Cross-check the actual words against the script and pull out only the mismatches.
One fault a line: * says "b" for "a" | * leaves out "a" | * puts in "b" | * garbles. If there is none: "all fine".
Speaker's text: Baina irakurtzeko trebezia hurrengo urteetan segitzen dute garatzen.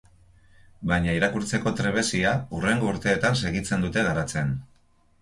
all fine